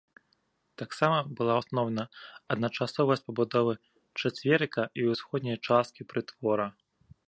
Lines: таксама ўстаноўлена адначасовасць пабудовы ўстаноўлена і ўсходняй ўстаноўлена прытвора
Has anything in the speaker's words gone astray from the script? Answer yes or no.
yes